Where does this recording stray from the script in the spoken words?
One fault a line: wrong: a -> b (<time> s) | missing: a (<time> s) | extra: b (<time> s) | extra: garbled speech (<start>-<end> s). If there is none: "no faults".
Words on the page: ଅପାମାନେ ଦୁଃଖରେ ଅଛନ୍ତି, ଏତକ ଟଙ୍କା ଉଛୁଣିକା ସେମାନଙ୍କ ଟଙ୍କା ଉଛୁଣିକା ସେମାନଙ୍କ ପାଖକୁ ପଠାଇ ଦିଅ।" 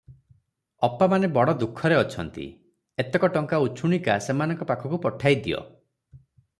extra: ବଡ଼ (1.4 s)
missing: ଟଙ୍କା ଉଛୁଣିକା ସେମାନଙ୍କ (4.7 s)